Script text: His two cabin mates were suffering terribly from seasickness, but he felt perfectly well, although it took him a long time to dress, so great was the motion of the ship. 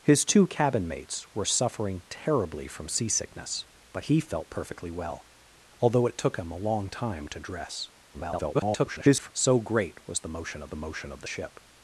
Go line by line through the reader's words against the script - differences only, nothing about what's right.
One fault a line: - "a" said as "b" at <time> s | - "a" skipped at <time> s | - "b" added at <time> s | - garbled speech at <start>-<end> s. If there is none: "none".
- garbled speech at 8.1-9.3 s
- "motion of the" added at 10.8 s